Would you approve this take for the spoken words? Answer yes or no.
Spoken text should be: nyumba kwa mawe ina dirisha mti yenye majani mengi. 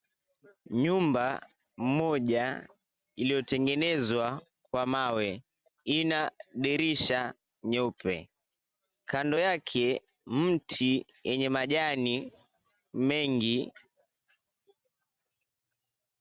no